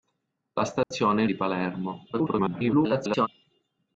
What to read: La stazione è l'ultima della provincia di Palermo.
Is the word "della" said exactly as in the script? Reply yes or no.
no